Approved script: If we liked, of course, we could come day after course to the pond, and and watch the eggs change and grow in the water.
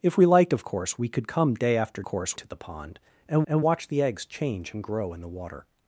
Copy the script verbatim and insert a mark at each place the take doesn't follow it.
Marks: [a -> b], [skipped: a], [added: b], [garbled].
If we liked, of course, we could come day after course to the pond, and and watch the eggs change and grow in the water.